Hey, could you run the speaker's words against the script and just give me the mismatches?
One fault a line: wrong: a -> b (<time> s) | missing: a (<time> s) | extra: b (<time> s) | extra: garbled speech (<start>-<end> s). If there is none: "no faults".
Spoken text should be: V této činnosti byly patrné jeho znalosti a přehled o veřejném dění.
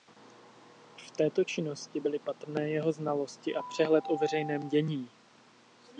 no faults